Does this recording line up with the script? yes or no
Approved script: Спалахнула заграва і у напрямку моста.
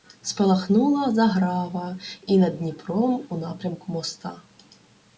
no